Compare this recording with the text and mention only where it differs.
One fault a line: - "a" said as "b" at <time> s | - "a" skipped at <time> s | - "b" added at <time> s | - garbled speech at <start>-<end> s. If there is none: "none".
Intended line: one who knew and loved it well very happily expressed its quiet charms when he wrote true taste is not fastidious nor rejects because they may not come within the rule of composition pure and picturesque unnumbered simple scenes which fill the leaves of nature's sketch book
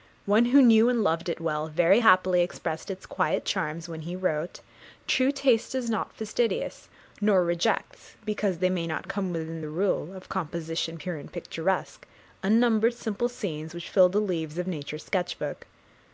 none